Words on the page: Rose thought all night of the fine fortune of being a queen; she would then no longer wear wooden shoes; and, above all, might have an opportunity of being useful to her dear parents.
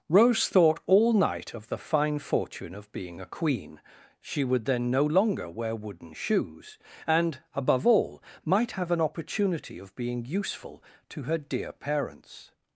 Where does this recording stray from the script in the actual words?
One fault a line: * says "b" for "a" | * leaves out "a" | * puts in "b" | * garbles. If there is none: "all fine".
all fine